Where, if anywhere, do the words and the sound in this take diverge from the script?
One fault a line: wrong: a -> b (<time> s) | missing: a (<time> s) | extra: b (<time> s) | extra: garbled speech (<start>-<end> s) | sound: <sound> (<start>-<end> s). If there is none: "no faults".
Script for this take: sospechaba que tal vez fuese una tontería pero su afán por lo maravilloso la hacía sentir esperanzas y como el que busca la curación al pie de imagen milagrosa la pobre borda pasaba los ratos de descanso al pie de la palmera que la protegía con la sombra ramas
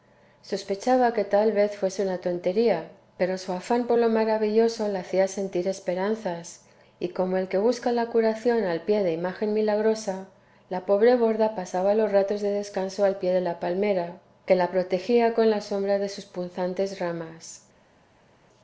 extra: de sus punzantes (16.0 s)